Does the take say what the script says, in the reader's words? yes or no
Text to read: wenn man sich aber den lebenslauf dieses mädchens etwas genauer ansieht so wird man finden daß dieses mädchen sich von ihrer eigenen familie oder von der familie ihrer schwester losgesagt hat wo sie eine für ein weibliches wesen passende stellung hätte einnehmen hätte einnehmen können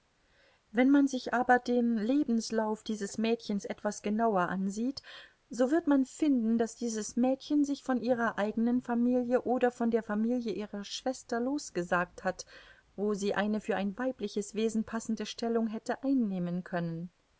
no